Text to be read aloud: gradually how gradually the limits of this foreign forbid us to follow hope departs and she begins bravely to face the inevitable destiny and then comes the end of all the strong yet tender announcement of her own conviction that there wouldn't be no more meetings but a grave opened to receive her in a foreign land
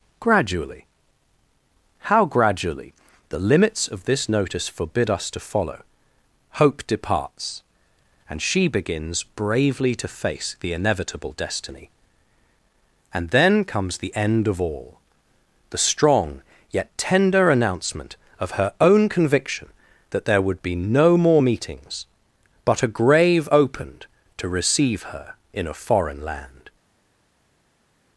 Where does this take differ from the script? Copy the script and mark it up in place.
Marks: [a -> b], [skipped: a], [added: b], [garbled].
gradually how gradually the limits of this [foreign -> notice] forbid us to follow hope departs and she begins bravely to face the inevitable destiny and then comes the end of all the strong yet tender announcement of her own conviction that there [wouldn't -> would] be no more meetings but a grave opened to receive her in a foreign land